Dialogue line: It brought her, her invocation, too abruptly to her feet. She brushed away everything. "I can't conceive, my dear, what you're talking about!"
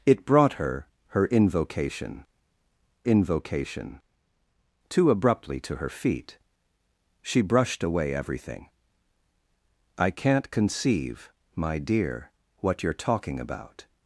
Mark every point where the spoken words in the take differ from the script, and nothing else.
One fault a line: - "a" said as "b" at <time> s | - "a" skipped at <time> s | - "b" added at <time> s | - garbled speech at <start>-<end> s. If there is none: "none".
- "invocation" added at 3.0 s